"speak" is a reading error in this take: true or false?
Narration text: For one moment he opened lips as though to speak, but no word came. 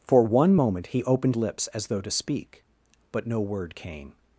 false